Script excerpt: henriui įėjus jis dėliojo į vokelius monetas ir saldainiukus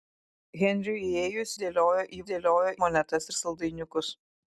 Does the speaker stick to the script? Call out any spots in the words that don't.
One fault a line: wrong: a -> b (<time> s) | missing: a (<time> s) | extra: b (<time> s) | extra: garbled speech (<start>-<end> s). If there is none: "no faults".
missing: jis (1.5 s)
wrong: vokelius -> dėliojo (2.3 s)